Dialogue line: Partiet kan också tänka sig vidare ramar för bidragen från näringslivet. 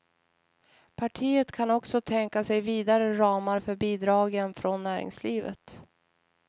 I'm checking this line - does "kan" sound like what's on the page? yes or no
yes